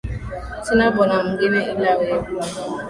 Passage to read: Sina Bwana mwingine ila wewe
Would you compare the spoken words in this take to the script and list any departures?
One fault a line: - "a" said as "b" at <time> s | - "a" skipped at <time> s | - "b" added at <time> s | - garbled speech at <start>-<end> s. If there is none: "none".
none